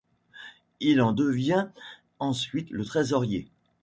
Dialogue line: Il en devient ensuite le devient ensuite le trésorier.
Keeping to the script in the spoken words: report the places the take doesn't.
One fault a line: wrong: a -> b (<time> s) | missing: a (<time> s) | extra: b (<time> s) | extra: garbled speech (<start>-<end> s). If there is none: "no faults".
missing: devient ensuite le (2.9 s)